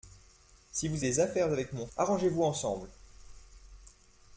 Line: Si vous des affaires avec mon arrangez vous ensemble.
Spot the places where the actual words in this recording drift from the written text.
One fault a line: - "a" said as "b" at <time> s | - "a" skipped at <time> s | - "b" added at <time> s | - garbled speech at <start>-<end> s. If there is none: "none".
none